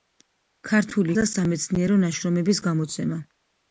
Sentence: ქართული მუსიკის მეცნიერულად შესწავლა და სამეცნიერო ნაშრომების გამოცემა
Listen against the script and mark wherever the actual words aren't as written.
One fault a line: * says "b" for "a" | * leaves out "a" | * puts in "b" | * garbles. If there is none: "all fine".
* leaves out "მუსიკის მეცნიერულად შესწავლა"